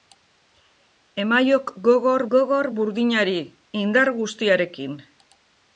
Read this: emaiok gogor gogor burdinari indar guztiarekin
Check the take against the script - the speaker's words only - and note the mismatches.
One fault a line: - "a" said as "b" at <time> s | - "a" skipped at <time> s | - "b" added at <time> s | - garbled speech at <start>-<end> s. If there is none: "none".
none